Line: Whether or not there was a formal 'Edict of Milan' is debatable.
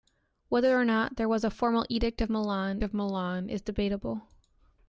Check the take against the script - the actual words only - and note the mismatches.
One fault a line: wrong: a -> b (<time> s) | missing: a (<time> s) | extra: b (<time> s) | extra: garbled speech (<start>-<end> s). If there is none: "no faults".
extra: of Milan (2.8 s)